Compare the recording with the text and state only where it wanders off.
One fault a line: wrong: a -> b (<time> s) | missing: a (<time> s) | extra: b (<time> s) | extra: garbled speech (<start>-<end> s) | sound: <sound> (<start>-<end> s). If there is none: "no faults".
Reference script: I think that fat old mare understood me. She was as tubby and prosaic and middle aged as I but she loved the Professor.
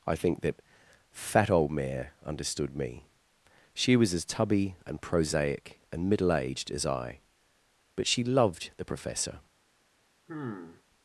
sound: sigh (10.3-10.8 s)